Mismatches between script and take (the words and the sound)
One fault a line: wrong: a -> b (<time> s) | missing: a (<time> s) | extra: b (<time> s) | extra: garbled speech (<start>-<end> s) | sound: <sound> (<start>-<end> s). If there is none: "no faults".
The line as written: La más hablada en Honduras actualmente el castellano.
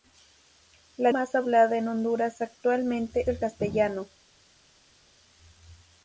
no faults